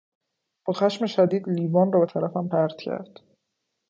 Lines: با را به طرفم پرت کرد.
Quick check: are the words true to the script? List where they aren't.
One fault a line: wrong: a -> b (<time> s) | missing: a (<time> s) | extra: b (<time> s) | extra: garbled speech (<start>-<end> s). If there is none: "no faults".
extra: خشم شدید لیوان (0.7 s)